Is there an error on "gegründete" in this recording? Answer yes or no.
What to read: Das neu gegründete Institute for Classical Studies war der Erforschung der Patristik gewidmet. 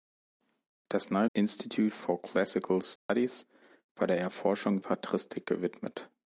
yes